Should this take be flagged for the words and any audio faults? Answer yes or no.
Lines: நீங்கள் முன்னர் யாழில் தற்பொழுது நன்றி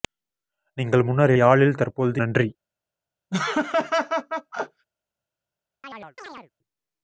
yes